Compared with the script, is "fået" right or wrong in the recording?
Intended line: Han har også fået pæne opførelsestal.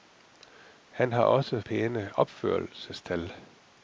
wrong